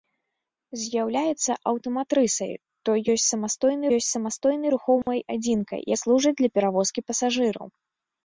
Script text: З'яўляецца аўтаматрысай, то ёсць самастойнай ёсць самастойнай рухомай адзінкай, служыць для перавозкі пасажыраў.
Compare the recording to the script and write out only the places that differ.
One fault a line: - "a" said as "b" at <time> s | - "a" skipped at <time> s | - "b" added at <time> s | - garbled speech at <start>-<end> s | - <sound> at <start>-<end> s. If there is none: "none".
- dropout at 5.0-5.1 s